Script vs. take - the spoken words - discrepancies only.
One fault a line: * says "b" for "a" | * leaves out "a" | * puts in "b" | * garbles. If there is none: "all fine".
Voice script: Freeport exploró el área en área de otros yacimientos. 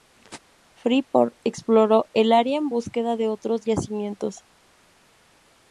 * says "búsqueda" for "área"